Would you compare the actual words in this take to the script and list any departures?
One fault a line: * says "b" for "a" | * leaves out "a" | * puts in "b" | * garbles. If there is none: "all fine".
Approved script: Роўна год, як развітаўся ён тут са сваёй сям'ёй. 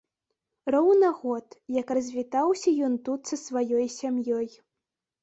all fine